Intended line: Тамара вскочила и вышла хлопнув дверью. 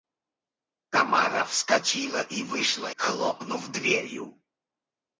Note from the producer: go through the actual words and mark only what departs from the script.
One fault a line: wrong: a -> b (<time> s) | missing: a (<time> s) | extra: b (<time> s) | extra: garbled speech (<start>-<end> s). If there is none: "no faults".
no faults